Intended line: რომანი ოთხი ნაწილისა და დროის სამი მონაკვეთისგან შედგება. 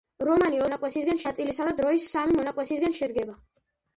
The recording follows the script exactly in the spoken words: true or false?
false